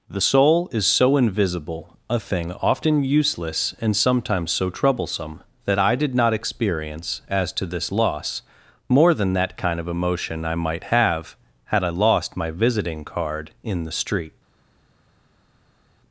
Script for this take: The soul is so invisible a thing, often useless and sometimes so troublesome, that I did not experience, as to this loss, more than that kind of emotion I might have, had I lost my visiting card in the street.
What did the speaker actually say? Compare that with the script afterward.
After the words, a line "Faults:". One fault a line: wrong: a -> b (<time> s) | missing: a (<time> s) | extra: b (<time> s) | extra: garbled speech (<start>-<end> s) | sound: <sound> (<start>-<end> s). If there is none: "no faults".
The soul is so invisible a thing, often useless and sometimes so troublesome, that I did not experience, as to this loss, more than that kind of emotion I might have, had I lost my visiting card in the street.
Faults:
no faults